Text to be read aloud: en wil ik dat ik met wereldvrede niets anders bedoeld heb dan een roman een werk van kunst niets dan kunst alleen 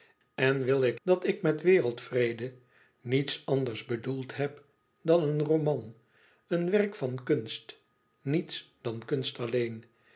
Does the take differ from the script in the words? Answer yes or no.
no